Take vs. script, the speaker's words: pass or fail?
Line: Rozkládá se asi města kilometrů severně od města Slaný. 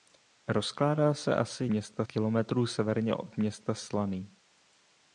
pass